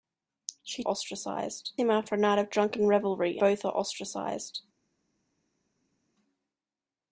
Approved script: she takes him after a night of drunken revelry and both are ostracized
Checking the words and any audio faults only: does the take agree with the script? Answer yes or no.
no